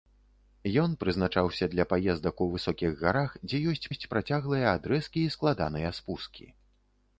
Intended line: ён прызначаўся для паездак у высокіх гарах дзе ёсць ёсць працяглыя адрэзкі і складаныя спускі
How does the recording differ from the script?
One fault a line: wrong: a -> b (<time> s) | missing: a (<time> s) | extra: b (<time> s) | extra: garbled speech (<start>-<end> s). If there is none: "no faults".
no faults